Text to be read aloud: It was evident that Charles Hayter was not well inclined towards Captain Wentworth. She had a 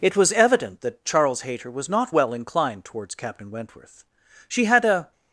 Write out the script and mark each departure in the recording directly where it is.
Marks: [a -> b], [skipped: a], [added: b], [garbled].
It was evident that Charles Hayter was not well inclined towards Captain Wentworth. She had a